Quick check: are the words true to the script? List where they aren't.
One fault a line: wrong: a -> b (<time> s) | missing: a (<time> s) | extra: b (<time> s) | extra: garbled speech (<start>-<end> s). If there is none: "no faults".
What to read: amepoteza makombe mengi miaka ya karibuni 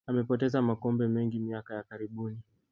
no faults